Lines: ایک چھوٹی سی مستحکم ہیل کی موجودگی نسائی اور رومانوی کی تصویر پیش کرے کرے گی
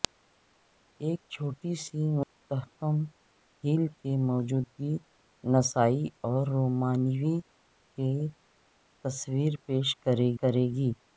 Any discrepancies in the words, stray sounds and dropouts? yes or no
yes